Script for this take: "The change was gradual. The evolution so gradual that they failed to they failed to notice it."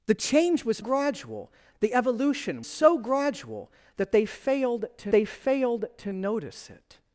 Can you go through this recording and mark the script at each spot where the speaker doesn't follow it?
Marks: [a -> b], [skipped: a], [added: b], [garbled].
"The change was gradual. The evolution so gradual that they failed to they failed to notice it."